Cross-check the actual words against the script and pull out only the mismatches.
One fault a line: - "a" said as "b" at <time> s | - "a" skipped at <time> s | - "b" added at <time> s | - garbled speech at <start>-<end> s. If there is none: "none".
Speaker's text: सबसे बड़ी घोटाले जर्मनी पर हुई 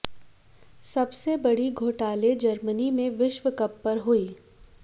- "में विश्व कप" added at 2.9 s